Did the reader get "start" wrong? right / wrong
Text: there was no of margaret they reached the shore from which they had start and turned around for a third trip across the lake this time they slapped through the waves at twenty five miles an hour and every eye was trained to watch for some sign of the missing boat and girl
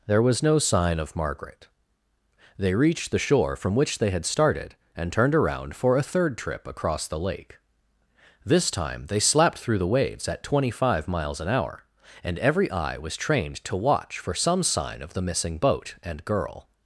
wrong